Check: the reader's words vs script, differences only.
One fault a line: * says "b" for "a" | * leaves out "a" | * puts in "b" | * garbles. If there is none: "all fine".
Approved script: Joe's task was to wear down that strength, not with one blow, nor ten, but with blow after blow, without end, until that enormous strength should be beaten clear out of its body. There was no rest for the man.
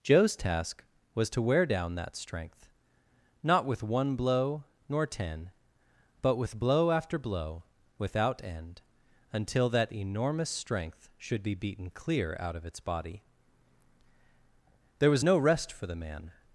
all fine